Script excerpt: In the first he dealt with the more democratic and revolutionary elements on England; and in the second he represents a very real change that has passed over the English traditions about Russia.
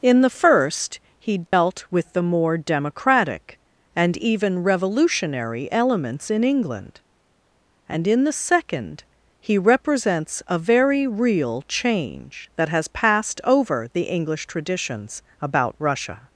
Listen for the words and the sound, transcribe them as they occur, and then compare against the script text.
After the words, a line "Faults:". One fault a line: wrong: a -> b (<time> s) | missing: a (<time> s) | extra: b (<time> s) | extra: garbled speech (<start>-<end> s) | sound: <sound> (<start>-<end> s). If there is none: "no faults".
In the first he dealt with the more democratic and even revolutionary elements in England; and in the second he represents a very real change that has passed over the English traditions about Russia.
Faults:
sound: dropout (1.5-1.5 s)
extra: even (4.2 s)
wrong: on -> in (6.3 s)